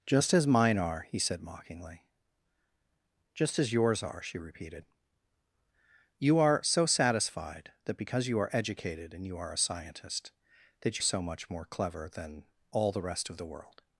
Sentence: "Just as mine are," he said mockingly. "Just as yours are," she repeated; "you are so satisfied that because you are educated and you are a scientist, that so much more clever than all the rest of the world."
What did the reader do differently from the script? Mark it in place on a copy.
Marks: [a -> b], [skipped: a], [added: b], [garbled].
"Just as mine are," he said mockingly. "Just as yours are," she repeated; "you are so satisfied that because you are educated and you are a scientist, that so much more clever than all the rest of the world."